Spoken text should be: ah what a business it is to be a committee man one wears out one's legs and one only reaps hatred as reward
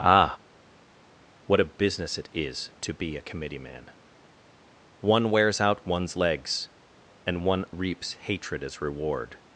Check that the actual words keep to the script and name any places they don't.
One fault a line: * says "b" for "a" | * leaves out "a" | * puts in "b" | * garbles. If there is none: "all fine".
* leaves out "only"